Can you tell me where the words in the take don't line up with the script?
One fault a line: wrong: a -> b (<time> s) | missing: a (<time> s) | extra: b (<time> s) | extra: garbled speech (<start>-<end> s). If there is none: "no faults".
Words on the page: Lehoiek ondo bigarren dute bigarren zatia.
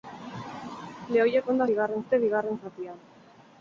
no faults